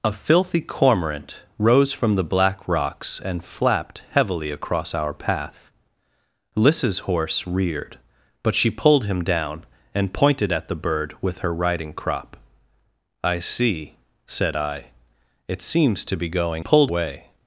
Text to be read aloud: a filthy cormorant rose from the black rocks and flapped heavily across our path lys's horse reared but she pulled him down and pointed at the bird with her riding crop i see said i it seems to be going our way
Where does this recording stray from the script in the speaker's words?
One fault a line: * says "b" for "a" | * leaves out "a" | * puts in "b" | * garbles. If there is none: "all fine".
* says "pulled" for "our"